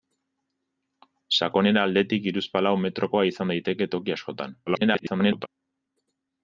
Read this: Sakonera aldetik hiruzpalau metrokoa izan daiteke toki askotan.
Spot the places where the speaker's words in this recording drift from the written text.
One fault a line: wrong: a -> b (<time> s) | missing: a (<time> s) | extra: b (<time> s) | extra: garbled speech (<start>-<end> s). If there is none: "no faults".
extra: garbled speech (4.7-5.5 s)